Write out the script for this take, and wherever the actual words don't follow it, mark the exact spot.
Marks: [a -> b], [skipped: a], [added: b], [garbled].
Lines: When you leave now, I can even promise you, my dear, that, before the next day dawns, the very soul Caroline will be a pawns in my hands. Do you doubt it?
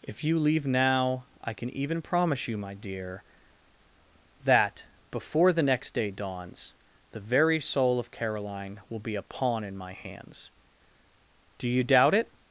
[When -> If] you leave now, I can even promise you, my dear, that, before the next day dawns, the very soul [added: of] Caroline will be a [pawns -> pawn] in my hands. Do you doubt it?